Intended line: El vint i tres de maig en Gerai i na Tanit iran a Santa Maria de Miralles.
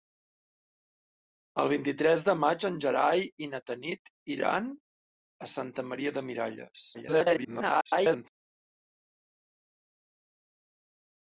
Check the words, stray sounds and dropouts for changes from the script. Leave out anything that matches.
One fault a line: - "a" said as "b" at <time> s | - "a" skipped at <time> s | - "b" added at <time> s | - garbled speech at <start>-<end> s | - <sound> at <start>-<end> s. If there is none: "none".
- garbled speech at 6.9-8.3 s